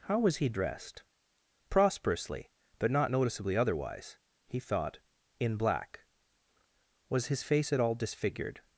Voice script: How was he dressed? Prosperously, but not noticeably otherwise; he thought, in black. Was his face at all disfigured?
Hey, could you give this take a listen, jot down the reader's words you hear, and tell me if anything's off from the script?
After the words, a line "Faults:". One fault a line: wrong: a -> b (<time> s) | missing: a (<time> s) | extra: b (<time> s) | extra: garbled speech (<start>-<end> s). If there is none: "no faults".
How was he dressed? Prosperously, but not noticeably otherwise; he thought, in black. Was his face at all disfigured?
Faults:
no faults